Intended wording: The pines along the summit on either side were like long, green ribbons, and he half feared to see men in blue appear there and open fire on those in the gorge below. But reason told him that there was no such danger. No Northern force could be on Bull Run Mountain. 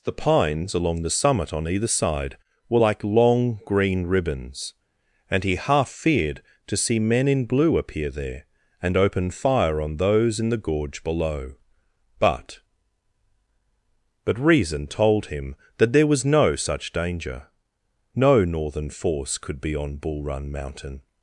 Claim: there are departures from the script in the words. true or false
true